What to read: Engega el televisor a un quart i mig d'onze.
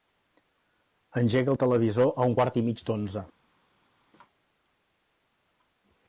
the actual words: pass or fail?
pass